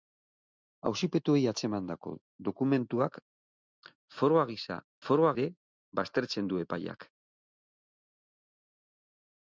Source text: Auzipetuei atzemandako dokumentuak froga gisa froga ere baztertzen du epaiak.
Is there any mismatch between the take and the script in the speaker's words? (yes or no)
no